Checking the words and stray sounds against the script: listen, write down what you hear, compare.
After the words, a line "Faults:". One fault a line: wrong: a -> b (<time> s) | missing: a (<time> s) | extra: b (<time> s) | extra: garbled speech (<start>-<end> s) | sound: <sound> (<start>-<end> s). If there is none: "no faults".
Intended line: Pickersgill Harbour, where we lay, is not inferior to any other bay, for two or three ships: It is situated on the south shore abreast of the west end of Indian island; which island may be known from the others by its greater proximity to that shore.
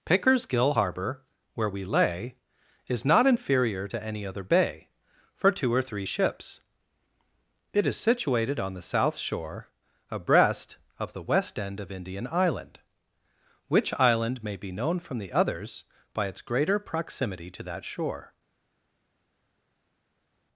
Pickersgill Harbour, where we lay, is not inferior to any other bay, for two or three ships: It is situated on the south shore abreast of the west end of Indian island; which island may be known from the others by its greater proximity to that shore.
Faults:
no faults